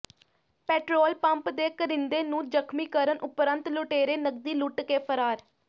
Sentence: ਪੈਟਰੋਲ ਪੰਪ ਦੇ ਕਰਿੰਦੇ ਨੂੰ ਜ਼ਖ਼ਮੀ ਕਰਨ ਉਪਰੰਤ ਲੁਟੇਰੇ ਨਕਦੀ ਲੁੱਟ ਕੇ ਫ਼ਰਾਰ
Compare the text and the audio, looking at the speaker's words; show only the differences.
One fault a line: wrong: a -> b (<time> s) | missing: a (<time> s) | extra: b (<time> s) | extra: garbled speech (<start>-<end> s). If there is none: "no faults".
no faults